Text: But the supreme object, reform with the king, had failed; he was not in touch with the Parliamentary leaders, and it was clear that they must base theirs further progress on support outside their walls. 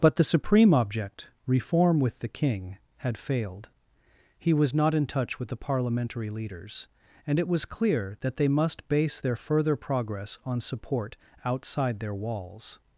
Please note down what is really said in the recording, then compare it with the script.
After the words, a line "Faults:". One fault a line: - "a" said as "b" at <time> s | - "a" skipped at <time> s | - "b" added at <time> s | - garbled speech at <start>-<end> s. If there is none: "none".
But the supreme object, reform with the king, had failed; he was not in touch with the Parliamentary leaders, and it was clear that they must base their further progress on support outside their walls.
Faults:
- "theirs" said as "their" at 9.2 s